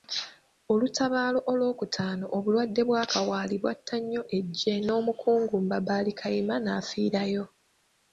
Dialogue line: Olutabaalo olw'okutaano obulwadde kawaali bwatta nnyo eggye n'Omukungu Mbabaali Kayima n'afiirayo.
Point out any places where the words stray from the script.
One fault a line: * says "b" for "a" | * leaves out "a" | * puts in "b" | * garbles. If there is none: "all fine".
* puts in "bwa"